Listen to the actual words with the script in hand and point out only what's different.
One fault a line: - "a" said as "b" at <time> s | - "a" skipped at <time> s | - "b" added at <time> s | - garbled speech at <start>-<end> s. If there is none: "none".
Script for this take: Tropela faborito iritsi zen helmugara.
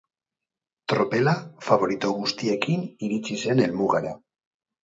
- "guztiekin" added at 2.2 s